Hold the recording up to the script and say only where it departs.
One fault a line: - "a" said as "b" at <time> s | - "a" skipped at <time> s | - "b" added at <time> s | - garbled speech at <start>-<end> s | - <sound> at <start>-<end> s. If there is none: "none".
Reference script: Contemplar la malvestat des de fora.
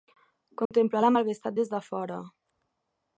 - dropout at 0.7-0.7 s